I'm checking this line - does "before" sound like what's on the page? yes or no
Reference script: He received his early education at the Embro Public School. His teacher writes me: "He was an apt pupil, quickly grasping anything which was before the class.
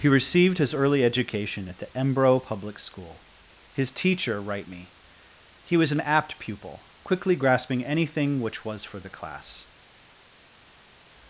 no